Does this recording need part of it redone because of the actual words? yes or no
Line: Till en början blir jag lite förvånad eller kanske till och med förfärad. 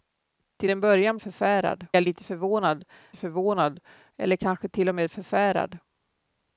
yes